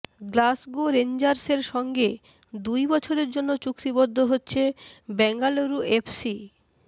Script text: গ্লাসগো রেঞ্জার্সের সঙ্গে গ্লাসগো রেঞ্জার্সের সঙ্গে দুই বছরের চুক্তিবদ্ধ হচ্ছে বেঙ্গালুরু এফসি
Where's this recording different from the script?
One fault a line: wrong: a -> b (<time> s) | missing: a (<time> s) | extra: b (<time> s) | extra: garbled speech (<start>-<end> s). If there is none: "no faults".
missing: গ্লাসগো রেঞ্জার্সের সঙ্গে (2.1 s)
extra: জন্য (3.3 s)